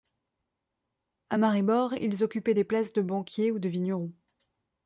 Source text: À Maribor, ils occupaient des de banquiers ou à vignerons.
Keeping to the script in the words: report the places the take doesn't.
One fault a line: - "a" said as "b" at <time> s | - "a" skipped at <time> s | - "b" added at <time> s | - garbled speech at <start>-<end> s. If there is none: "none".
- "places" added at 2.6 s
- "à" said as "de" at 3.6 s